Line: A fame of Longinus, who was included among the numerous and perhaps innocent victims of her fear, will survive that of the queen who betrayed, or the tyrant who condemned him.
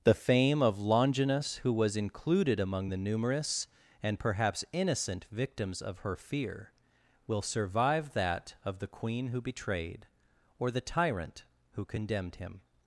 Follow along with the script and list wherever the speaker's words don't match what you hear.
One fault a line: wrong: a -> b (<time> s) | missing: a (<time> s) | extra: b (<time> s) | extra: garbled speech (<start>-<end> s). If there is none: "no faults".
wrong: A -> The (0.0 s)